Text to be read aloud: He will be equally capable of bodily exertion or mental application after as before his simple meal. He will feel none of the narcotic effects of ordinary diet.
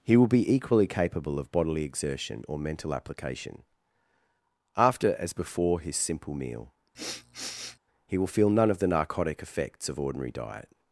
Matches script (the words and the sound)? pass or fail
fail